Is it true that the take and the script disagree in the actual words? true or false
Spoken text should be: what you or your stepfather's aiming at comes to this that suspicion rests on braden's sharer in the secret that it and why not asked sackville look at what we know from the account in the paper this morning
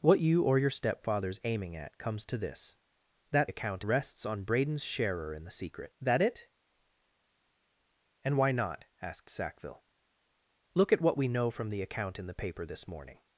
true